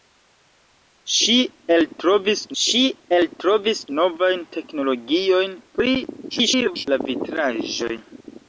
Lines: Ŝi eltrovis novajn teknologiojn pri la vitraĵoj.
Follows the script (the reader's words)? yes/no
no